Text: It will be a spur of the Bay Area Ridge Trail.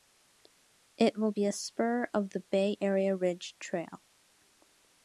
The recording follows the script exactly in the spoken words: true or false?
true